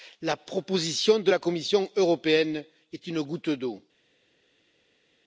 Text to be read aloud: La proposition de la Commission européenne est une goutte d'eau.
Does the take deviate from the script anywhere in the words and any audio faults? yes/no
no